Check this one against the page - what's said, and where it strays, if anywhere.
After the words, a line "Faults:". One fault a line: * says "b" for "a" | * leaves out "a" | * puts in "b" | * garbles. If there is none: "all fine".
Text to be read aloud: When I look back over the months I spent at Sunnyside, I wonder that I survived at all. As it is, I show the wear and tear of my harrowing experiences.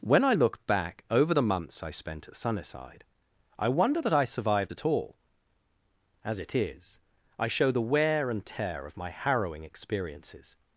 When I look back over the months I spent at Sunnyside, I wonder that I survived at all. As it is, I show the wear and tear of my harrowing experiences.
Faults:
all fine